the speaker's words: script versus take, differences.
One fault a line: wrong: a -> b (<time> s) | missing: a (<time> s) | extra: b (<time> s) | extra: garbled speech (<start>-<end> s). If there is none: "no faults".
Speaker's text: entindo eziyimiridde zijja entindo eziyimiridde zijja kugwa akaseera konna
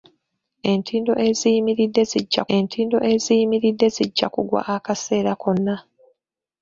no faults